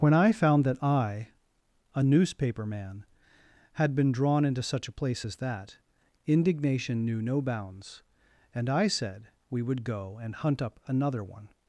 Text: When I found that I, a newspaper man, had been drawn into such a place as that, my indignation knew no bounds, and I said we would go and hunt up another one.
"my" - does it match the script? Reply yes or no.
no